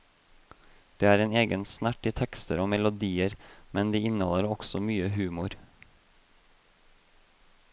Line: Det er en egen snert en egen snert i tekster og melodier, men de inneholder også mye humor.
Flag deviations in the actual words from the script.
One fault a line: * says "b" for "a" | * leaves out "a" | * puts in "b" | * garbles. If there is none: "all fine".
* leaves out "en egen snert"